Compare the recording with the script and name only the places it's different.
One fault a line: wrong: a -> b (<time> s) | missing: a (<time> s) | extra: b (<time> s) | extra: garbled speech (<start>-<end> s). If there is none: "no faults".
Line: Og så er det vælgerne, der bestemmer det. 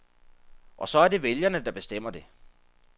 no faults